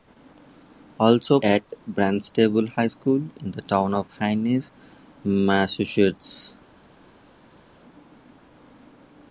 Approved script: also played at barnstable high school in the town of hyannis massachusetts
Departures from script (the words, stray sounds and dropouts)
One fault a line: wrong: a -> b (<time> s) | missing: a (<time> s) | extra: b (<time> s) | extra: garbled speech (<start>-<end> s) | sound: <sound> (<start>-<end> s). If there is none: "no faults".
missing: played (1.4 s)